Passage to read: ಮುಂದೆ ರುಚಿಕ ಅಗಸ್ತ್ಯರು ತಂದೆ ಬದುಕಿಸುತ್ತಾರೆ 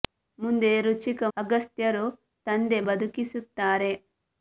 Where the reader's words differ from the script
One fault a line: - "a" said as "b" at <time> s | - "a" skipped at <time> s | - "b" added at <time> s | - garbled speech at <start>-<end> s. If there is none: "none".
none